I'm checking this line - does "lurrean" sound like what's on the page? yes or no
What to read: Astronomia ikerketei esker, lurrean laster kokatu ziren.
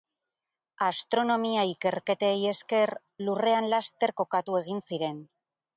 yes